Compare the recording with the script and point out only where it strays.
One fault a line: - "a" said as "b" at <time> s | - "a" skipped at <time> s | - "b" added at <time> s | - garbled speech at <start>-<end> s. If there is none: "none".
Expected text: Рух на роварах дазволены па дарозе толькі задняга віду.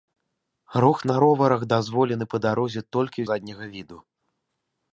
none